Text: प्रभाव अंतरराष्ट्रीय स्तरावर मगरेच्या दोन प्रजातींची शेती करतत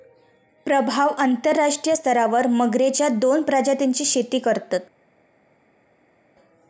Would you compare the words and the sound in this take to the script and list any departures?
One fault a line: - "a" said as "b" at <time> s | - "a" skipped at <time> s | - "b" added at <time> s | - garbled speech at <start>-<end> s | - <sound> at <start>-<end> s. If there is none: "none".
none